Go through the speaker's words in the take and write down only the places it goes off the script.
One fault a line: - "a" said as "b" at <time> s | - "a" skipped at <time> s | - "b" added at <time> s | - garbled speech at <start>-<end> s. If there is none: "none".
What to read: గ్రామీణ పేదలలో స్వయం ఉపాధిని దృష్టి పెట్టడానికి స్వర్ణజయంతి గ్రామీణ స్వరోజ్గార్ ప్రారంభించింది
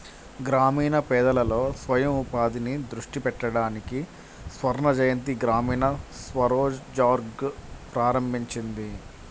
none